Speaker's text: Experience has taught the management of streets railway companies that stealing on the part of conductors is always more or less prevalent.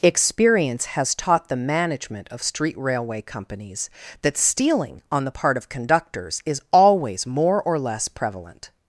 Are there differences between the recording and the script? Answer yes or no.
yes